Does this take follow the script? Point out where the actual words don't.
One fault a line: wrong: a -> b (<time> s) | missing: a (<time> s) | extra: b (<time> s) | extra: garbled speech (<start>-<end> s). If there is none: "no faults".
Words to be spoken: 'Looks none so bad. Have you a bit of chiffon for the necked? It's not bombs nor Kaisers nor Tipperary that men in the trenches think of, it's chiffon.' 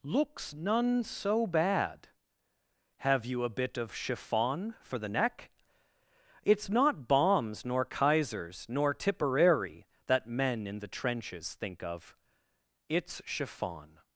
wrong: necked -> neck (5.1 s)